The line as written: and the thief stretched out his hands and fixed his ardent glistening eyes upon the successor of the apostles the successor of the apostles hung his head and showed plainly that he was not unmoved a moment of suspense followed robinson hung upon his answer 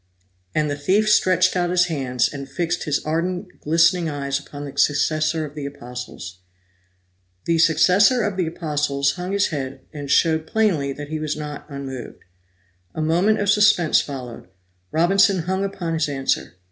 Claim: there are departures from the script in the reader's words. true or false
false